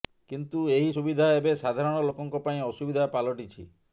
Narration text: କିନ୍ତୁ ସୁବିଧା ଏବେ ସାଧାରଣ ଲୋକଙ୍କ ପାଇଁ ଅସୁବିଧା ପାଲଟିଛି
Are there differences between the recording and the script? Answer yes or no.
yes